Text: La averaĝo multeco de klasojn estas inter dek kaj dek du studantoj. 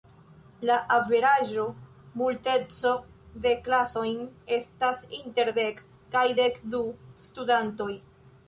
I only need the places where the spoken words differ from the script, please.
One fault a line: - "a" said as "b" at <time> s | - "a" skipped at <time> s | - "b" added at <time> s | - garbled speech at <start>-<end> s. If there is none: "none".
none